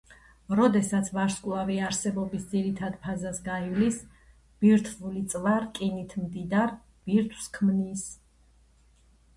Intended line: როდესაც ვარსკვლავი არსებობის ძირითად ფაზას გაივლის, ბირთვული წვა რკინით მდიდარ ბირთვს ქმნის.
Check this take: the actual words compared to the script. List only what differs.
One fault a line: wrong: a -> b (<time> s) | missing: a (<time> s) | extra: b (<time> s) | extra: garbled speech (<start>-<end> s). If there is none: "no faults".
no faults